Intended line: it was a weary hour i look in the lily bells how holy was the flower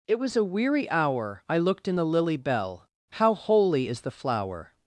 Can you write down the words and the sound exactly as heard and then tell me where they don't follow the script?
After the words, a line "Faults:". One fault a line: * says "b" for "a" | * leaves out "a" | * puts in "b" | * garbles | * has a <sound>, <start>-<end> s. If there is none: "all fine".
it was a weary hour i looked in the lily bell how holy is the flower
Faults:
* says "looked" for "look"
* says "bell" for "bells"
* says "is" for "was"